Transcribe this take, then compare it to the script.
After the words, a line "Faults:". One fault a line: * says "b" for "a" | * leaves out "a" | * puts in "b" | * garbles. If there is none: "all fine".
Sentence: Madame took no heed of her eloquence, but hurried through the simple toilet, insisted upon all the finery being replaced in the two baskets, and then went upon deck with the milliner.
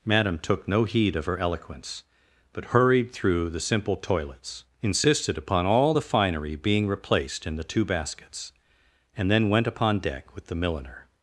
Madame took no heed of her eloquence, but hurried through the simple toilets, insisted upon all the finery being replaced in the two baskets, and then went upon deck with the milliner.
Faults:
* says "toilets" for "toilet"